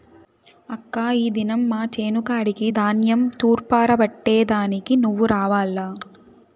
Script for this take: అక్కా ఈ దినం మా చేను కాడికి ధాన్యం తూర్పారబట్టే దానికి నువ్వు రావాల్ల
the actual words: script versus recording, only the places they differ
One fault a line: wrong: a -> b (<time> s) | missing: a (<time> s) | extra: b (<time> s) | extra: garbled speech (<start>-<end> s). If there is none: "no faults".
no faults